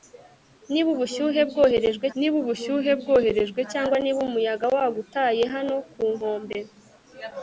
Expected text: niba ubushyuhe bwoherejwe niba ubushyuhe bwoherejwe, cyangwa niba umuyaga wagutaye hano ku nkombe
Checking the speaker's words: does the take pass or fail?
pass